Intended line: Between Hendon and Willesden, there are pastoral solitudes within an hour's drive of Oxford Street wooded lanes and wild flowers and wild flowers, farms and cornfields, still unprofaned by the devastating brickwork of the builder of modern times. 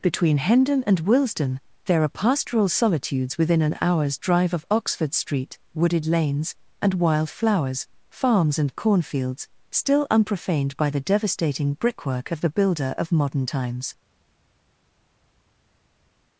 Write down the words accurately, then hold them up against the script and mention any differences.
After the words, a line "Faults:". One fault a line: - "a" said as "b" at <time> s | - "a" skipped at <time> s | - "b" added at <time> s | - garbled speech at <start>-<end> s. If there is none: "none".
Between Hendon and Willesden, there are pastoral solitudes within an hour's drive of Oxford Street wooded lanes and wild flowers, farms and cornfields, still unprofaned by the devastating brickwork of the builder of modern times.
Faults:
- "and wild flowers" skipped at 7.8 s